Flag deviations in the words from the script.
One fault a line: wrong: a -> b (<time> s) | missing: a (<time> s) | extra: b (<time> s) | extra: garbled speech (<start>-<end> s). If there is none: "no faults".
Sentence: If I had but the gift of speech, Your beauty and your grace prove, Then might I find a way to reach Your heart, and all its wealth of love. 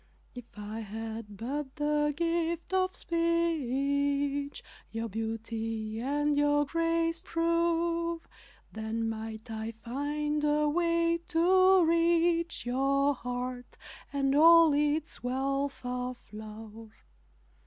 no faults